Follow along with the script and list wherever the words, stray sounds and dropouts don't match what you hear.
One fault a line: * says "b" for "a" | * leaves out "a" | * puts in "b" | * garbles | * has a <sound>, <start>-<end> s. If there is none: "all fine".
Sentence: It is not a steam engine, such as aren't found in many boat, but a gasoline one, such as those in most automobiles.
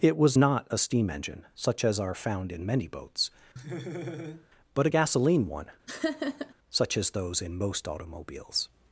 * says "was" for "is"
* says "are" for "aren't"
* says "boats" for "boat"
* has a laugh, 3.6-4.5 s
* has a laugh, 5.9-6.5 s